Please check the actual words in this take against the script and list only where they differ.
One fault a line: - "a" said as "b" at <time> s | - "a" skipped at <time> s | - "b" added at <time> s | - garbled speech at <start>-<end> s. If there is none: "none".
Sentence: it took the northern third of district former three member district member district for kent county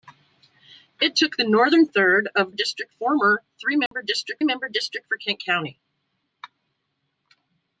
none